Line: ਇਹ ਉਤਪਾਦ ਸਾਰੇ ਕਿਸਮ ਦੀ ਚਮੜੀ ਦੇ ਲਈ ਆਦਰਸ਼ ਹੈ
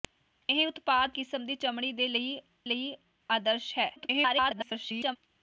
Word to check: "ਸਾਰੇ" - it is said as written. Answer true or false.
false